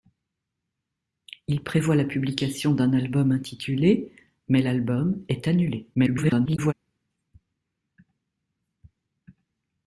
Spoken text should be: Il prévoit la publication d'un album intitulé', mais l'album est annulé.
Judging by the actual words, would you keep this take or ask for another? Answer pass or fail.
fail